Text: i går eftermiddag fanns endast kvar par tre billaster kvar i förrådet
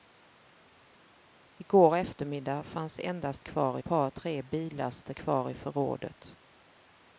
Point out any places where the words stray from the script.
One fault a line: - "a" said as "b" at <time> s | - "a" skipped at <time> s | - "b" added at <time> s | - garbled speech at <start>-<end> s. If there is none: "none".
none